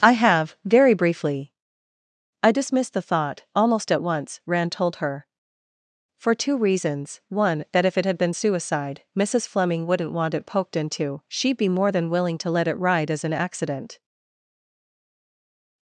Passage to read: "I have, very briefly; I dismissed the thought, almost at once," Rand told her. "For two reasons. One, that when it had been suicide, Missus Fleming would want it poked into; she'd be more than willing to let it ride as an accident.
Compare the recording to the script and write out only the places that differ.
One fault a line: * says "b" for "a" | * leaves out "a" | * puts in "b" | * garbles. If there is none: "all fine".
* says "if" for "when"
* says "wouldn't" for "would"